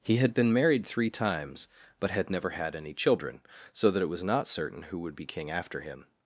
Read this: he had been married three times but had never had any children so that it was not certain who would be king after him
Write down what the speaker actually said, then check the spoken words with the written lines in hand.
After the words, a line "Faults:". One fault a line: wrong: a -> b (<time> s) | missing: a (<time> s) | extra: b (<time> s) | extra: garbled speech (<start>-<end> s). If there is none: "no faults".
he had been married three times but had never had any children so that it was not certain who would be king after him
Faults:
no faults